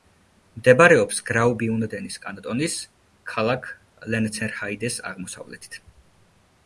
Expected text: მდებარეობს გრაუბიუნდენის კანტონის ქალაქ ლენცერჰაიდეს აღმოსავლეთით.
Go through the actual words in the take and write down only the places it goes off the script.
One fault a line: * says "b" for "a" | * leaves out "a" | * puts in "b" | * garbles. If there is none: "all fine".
all fine